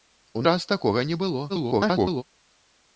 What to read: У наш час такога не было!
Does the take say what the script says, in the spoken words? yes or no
no